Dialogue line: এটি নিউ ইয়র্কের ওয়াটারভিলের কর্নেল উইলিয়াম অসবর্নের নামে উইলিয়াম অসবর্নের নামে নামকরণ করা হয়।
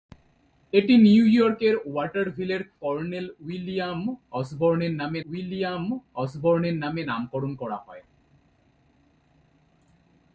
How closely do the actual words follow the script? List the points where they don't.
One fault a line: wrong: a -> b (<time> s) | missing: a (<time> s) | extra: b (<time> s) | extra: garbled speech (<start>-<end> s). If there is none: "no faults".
no faults